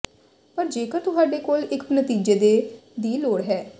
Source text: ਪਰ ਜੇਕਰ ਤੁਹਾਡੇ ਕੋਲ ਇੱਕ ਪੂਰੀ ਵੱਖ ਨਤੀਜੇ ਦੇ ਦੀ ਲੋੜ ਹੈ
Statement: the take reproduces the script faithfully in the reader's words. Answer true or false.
false